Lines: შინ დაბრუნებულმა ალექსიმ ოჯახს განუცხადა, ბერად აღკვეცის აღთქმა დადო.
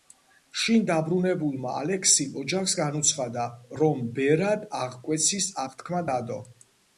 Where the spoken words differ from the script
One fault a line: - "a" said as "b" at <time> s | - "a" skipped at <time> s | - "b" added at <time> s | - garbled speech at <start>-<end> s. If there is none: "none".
- "რომ" added at 3.8 s